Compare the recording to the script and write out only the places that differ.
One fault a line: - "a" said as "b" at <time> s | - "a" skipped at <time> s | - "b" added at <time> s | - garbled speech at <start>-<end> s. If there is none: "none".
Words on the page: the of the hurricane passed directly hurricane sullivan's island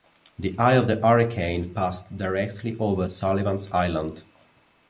- "eye" added at 0.6 s
- "hurricane" said as "over" at 2.8 s